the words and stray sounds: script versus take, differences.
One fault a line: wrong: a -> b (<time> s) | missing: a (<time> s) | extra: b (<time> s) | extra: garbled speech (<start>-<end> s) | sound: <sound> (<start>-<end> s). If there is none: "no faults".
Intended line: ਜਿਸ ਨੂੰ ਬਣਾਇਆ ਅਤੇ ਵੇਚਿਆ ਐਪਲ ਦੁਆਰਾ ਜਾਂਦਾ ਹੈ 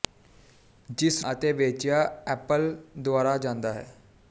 missing: ਨੂੰ ਬਣਾਇਆ (1.2 s)